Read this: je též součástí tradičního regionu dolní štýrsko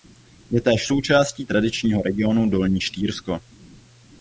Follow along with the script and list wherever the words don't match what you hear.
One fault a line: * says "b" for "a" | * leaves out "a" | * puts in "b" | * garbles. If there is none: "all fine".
all fine